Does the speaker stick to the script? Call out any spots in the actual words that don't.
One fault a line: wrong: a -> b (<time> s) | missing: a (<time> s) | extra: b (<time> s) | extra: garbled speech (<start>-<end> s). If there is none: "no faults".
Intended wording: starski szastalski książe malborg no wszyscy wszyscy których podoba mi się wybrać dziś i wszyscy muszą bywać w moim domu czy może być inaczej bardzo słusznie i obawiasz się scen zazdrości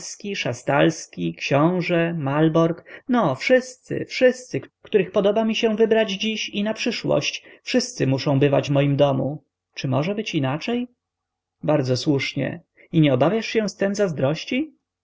extra: na przyszłość (6.6 s)
extra: nie (13.0 s)